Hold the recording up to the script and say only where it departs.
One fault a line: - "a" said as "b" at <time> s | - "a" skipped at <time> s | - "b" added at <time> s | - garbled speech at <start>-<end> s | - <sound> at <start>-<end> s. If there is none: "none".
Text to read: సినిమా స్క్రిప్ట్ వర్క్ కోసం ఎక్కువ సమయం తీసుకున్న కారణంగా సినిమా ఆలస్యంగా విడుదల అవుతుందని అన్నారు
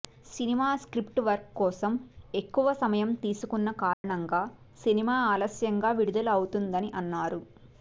- dropout at 3.9-4.0 s